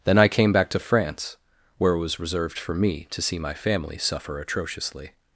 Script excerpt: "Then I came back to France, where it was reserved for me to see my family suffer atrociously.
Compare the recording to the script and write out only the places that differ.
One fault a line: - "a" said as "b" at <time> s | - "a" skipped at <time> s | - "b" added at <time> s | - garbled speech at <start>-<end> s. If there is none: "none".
none